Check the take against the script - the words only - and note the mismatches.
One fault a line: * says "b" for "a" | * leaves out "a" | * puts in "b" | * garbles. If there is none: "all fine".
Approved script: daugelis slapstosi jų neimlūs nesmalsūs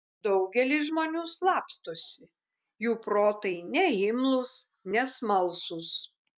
* puts in "žmonių"
* puts in "protai"